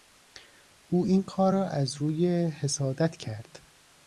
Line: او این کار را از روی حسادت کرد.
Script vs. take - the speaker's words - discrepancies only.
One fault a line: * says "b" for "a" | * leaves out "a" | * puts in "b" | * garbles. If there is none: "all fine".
all fine